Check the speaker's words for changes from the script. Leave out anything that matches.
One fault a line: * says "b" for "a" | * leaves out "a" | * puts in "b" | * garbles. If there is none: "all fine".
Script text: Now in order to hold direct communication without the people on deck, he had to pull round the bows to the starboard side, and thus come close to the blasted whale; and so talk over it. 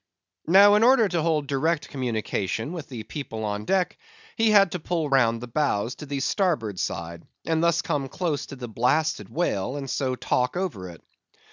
* says "with" for "without"